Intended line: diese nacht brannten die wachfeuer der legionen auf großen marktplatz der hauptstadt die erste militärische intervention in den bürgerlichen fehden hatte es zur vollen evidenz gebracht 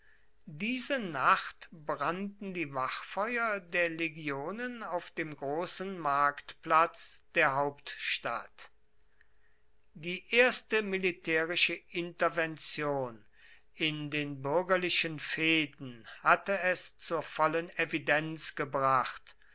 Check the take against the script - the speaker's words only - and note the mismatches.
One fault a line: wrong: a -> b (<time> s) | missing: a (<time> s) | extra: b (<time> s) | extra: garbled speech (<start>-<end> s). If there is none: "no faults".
extra: dem (5.1 s)